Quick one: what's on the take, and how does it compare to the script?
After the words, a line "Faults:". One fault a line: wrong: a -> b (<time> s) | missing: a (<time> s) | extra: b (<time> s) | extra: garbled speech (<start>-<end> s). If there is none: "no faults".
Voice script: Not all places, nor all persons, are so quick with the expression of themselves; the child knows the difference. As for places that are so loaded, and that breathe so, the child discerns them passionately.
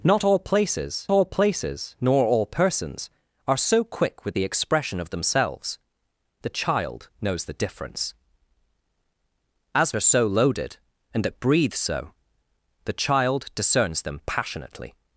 Not all places all places, nor all persons, are so quick with the expression of themselves; the child knows the difference. As are so loaded, and that breathe so, the child discerns them passionately.
Faults:
extra: all places (1.1 s)
missing: for places that (9.9 s)